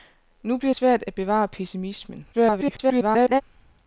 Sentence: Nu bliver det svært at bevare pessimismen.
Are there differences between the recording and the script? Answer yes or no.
yes